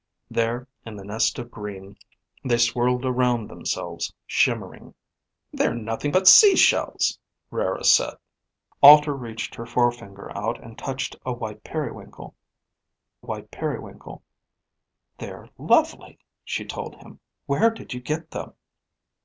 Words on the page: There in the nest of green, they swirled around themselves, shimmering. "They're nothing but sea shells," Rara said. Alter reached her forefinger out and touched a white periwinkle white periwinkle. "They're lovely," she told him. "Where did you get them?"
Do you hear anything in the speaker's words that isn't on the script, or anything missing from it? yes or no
no